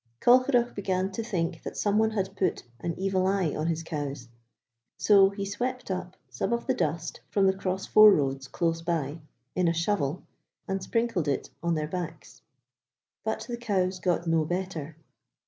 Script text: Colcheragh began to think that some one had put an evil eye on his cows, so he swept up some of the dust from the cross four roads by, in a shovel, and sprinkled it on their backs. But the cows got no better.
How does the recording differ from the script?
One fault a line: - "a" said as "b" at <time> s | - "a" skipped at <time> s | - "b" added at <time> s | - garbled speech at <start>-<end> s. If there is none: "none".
- "close" added at 8.5 s